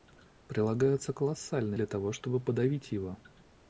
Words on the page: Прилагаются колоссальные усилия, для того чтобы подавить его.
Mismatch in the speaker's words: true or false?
true